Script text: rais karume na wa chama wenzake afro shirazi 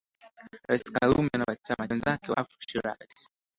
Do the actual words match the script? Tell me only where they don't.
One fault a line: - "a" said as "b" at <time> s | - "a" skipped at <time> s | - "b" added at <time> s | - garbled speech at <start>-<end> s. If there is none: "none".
none